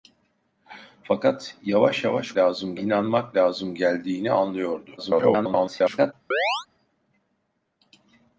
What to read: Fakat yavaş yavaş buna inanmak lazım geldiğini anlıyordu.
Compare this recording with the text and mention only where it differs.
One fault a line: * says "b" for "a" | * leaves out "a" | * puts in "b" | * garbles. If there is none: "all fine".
* says "lazım" for "buna"
* garbles